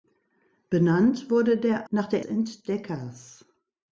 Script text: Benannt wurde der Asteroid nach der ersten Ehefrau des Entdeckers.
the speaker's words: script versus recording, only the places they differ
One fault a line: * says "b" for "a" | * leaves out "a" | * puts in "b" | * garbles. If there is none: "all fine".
* leaves out "Asteroid"
* leaves out "ersten Ehefrau des"